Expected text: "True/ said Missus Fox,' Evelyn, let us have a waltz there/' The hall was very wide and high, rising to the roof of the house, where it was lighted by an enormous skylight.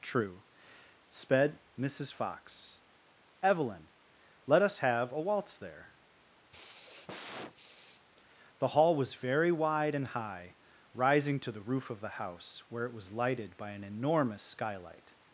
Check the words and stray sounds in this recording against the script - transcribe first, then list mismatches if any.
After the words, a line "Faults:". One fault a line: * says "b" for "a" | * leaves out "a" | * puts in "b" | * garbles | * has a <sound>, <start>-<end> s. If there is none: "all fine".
"True/ sped Missus Fox,' Evelyn, let us have a waltz there/' The hall was very wide and high, rising to the roof of the house, where it was lighted by an enormous skylight.
Faults:
* says "sped" for "said"
* has a sigh, 6.5-8.0 s